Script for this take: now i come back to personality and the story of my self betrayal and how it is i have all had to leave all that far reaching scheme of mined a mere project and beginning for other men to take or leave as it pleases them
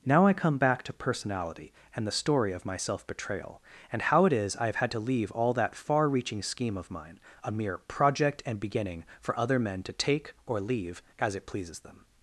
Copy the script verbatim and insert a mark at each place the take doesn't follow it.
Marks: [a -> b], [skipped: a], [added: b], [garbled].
now i come back to personality and the story of my self betrayal and how it is i have [skipped: all] had to leave all that far reaching scheme of [mined -> mine] a mere project and beginning for other men to take or leave as it pleases them